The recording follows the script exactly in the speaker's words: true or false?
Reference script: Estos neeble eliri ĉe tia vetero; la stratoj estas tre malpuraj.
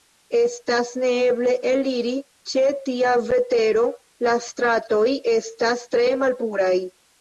false